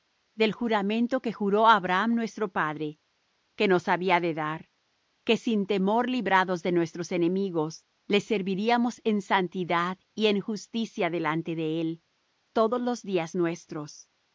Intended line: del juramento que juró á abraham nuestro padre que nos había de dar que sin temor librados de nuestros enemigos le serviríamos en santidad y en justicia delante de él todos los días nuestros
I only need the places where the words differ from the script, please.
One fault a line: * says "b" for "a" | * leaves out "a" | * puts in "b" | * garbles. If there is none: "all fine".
all fine